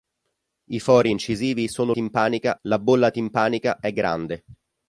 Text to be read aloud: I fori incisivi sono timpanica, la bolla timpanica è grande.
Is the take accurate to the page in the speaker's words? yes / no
yes